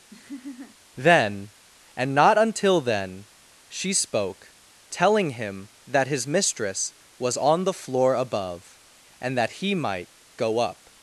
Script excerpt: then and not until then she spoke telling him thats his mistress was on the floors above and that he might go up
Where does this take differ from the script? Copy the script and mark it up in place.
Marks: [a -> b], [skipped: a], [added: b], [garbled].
then and not until then she spoke telling him [thats -> that] his mistress was on the [floors -> floor] above and that he might go up